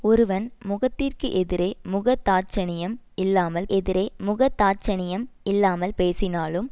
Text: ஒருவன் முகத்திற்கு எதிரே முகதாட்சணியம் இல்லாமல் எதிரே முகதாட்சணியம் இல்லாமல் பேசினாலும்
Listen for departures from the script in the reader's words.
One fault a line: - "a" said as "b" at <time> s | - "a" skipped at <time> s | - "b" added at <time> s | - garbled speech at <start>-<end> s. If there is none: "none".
none